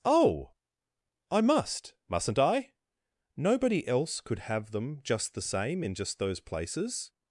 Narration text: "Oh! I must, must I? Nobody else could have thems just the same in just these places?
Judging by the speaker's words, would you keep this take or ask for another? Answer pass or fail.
fail